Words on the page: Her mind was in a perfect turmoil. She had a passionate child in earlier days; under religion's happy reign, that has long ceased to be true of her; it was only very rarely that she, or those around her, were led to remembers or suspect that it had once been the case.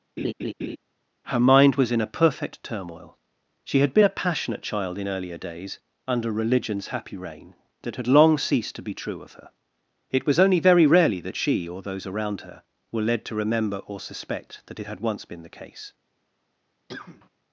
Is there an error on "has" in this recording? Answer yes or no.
yes